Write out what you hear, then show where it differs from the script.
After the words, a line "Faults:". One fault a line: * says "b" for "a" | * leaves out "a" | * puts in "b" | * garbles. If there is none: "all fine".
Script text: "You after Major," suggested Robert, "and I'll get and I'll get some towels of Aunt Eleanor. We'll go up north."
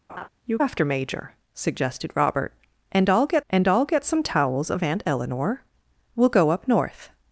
"You after Major," suggested Robert, "and I'll get and I'll get some towels of Aunt Eleanor. We'll go up north."
Faults:
all fine